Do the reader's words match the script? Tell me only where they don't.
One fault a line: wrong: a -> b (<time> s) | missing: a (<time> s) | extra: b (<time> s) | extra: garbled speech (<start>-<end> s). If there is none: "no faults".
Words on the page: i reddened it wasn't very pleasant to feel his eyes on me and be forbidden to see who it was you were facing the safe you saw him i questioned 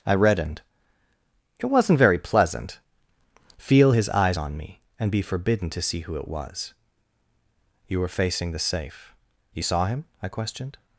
missing: to (2.8 s)